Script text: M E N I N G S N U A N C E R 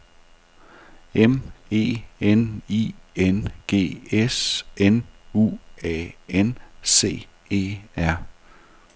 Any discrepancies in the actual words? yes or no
no